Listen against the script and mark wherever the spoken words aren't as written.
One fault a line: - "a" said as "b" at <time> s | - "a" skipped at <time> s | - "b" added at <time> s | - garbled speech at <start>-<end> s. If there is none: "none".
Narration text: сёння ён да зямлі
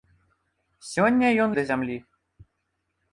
none